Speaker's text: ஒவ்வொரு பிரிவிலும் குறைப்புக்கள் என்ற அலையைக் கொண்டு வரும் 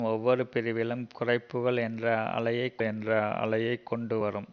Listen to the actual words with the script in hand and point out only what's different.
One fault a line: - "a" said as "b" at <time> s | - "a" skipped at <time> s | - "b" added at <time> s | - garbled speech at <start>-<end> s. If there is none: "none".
- "என்ற அலையைக்" added at 2.8 s